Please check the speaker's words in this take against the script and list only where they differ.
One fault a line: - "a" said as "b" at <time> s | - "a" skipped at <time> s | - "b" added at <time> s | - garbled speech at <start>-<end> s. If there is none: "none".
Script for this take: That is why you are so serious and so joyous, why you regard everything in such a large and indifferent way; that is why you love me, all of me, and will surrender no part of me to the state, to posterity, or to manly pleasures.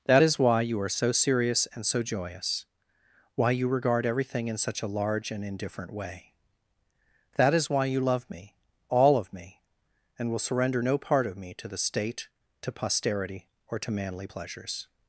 none